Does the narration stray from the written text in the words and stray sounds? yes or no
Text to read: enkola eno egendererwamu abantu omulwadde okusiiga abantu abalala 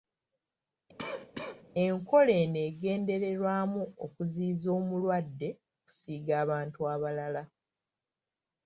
yes